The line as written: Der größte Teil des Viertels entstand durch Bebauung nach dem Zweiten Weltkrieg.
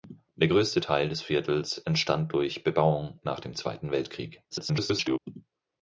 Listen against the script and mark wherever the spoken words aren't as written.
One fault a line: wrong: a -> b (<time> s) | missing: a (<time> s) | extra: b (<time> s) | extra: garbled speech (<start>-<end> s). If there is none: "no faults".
extra: garbled speech (4.5-5.2 s)